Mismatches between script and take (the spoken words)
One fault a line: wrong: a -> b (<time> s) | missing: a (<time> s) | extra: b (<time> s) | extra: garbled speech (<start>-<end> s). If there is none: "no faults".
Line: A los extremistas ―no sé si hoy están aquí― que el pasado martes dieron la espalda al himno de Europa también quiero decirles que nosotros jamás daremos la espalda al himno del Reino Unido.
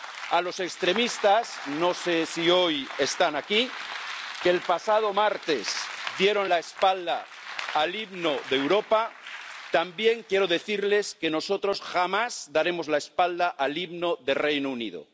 no faults